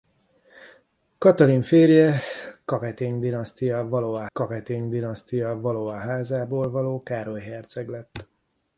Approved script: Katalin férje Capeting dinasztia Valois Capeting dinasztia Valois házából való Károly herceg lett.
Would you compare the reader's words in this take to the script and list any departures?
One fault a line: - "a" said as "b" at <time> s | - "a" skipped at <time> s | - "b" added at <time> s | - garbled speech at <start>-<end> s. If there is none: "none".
none